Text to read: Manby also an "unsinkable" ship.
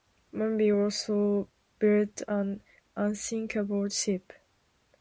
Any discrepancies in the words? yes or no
yes